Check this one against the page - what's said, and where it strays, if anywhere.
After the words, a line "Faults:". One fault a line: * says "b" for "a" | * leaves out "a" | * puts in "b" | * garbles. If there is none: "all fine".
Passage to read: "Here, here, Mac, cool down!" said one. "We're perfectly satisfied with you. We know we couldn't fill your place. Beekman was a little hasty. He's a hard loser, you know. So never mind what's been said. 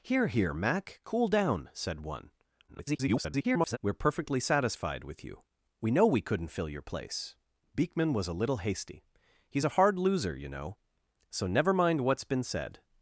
"Here, here, Mac, cool down!" said one. [garbled] "We're perfectly satisfied with you. We know we couldn't fill your place. Beekman was a little hasty. He's a hard loser, you know. So never mind what's been said.
Faults:
* garbles